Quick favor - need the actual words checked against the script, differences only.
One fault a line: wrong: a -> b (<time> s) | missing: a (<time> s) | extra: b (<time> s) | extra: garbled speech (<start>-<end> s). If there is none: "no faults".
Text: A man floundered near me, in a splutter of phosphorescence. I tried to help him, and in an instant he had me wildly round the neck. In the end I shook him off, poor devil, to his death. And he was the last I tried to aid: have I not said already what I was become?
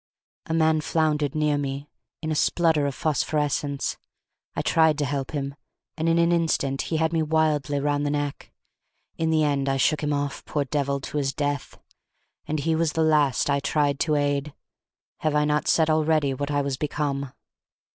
no faults